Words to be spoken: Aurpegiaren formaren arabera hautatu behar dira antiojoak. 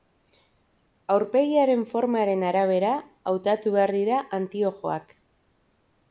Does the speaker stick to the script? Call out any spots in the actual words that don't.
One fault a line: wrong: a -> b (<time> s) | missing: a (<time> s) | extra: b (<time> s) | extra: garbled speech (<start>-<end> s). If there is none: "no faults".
no faults